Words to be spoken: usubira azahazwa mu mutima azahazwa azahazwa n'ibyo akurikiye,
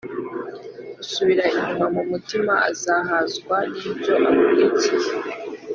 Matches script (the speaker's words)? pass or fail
fail